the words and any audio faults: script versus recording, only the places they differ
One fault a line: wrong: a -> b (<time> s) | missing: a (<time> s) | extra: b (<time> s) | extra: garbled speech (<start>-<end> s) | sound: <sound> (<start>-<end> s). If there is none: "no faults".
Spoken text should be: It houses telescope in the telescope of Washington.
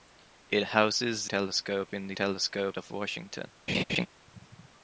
sound: laugh (3.7-4.1 s)